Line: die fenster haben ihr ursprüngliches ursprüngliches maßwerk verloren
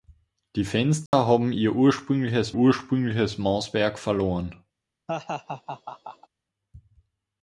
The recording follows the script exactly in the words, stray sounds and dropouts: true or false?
false